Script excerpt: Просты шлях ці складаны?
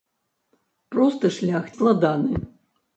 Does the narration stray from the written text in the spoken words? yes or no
yes